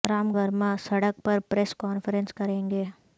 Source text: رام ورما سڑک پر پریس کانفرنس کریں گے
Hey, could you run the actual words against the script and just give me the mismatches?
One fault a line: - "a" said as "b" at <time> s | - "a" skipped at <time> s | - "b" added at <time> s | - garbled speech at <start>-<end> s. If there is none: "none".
none